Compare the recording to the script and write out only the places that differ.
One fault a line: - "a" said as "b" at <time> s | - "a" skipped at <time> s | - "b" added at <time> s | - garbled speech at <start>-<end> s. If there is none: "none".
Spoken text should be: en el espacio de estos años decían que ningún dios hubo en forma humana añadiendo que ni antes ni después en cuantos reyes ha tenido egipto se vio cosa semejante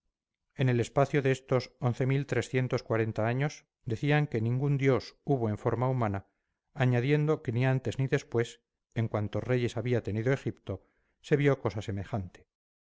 - "ha" said as "había" at 9.8 s